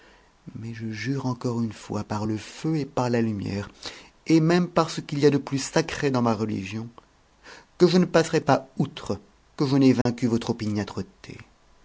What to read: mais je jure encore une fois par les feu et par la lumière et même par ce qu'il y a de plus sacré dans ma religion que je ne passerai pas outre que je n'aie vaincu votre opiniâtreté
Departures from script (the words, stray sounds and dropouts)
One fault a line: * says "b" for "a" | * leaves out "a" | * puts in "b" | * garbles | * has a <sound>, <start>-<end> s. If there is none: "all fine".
* says "le" for "les"
* has a dropout, 10.0-10.1 s